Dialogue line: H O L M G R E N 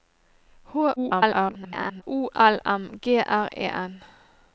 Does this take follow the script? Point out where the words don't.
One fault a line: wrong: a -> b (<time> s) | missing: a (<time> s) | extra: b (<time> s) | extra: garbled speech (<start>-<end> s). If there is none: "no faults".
extra: garbled speech (1.0-2.0 s)